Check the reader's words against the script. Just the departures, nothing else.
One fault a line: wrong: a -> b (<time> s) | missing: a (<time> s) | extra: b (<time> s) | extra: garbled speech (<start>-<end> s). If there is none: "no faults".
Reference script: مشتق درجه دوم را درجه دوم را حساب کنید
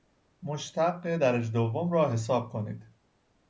missing: درجه دوم را (2.1 s)